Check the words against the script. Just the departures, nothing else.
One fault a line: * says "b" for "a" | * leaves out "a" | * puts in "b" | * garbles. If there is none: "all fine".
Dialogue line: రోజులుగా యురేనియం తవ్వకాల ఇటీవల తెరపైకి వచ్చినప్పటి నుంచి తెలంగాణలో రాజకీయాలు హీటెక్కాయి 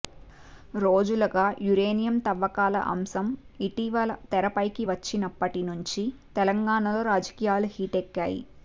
* puts in "అంశం"